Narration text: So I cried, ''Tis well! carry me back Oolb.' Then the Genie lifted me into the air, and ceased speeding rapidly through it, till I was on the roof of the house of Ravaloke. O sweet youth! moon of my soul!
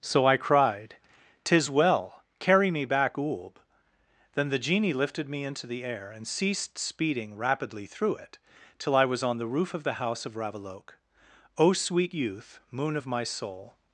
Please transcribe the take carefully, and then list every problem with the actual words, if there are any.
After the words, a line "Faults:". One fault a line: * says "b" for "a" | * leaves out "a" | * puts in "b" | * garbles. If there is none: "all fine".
So I cried, ''Tis well! carry me back Oolb.' Then the Genie lifted me into the air, and ceased speeding rapidly through it, till I was on the roof of the house of Ravaloke. O sweet youth! moon of my soul!
Faults:
all fine